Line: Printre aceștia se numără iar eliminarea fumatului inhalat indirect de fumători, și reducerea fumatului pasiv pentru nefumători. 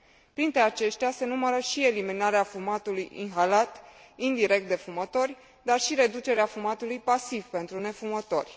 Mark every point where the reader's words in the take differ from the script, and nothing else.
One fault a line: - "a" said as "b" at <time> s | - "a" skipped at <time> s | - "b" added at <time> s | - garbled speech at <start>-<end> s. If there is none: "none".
- "iar" said as "și" at 1.6 s
- "dar" added at 5.6 s